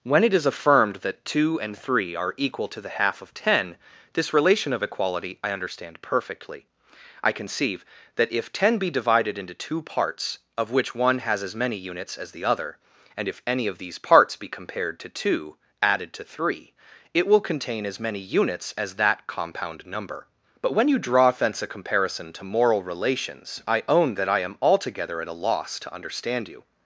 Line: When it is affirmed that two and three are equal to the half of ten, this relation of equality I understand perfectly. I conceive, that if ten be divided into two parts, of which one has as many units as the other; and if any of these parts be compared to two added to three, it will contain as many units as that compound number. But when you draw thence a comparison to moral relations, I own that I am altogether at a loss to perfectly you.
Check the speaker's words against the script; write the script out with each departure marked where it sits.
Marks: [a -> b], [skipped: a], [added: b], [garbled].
When it is affirmed that two and three are equal to the half of ten, this relation of equality I understand perfectly. I conceive, that if ten be divided into two parts, of which one has as many units as the other; and if any of these parts be compared to two added to three, it will contain as many units as that compound number. But when you draw thence a comparison to moral relations, I own that I am altogether at a loss to [perfectly -> understand] you.